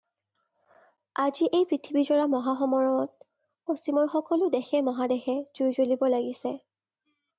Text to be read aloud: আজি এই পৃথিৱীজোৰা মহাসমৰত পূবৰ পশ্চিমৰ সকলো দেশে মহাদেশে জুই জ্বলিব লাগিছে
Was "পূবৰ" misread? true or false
true